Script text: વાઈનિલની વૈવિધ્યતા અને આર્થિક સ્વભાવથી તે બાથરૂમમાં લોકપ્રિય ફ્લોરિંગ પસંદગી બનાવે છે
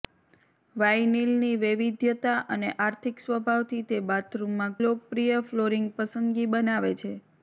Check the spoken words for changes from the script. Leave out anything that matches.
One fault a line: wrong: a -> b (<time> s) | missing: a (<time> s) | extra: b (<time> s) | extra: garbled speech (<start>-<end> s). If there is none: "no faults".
no faults